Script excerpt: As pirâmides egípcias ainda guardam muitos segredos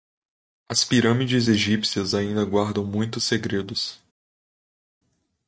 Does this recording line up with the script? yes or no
yes